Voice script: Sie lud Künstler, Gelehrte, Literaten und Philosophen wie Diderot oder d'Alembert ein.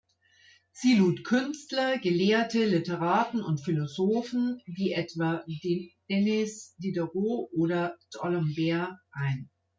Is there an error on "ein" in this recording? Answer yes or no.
no